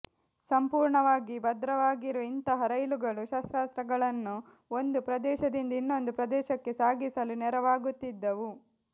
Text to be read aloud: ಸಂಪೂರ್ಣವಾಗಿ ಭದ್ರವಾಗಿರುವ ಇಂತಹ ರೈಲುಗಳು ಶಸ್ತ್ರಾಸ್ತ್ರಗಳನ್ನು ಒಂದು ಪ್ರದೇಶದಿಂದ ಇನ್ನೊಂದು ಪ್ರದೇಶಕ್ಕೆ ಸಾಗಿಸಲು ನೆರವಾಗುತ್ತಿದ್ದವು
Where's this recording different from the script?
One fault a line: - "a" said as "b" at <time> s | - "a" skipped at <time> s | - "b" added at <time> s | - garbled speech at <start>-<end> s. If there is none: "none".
none